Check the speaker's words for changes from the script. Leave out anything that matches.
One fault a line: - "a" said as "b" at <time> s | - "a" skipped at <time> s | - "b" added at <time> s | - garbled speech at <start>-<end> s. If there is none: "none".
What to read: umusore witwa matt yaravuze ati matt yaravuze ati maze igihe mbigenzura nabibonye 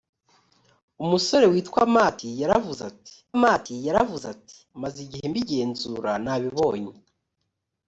none